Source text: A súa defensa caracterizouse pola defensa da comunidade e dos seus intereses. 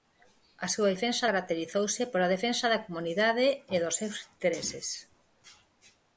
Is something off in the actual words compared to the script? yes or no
no